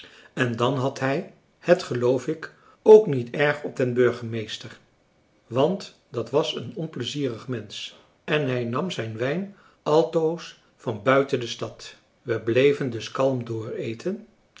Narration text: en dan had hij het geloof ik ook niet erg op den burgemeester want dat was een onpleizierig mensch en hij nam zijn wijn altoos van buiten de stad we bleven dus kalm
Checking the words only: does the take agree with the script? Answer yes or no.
yes